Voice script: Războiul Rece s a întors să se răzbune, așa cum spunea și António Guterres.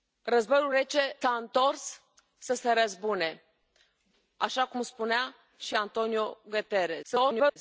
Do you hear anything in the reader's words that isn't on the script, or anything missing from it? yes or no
yes